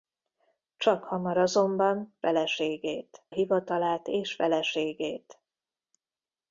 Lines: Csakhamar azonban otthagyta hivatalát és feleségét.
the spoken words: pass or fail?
fail